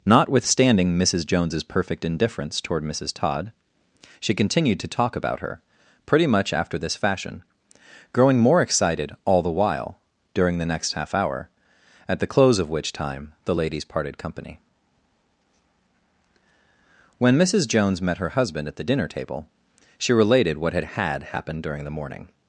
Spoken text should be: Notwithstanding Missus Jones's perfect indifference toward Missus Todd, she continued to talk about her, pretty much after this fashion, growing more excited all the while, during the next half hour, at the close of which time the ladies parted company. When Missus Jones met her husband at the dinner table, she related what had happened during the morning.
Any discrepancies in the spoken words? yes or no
yes